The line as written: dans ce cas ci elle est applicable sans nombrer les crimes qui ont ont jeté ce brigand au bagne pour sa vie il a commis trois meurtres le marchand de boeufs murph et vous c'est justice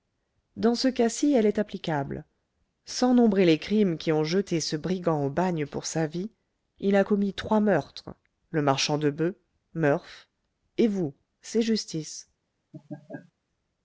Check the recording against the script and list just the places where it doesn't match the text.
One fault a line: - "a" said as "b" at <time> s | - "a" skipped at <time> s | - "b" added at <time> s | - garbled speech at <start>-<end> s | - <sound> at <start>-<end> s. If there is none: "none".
- "ont" skipped at 4.2 s
- laugh at 12.7-13.3 s